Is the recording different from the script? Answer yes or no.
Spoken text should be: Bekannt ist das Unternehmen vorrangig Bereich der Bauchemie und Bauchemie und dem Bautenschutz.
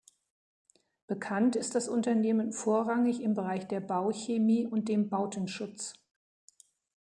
yes